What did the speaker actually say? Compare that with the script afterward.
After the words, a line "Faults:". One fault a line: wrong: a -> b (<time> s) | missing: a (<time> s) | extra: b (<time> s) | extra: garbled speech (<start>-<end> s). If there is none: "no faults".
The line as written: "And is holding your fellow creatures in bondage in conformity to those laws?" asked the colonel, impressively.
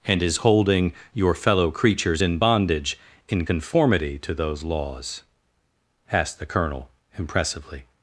"And is holding your fellow creatures in bondage in conformity to those laws?" asked the colonel, impressively.
Faults:
no faults